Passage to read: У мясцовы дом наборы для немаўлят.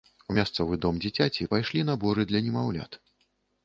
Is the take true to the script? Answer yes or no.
no